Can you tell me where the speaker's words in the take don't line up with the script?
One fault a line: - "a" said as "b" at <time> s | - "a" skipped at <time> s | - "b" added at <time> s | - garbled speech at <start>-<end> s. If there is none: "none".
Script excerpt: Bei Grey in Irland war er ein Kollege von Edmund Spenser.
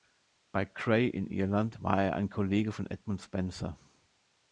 none